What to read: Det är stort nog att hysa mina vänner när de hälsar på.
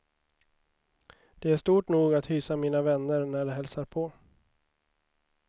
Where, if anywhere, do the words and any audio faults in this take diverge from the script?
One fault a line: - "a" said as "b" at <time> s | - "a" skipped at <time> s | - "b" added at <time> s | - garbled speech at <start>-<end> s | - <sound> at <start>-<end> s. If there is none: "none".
none